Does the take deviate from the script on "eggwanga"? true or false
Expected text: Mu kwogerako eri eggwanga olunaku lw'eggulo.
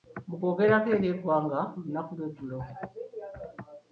false